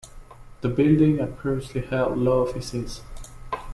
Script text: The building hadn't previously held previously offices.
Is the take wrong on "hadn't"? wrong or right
wrong